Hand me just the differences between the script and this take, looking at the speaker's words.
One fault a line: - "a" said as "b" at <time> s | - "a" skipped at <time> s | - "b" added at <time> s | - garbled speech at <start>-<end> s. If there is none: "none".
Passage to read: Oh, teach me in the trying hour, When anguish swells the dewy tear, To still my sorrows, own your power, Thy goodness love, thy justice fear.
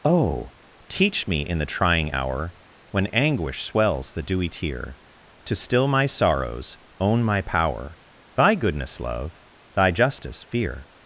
- "your" said as "my" at 7.2 s